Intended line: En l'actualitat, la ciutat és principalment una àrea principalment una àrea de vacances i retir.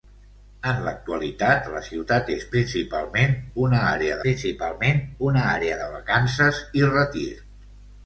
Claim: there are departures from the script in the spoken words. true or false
false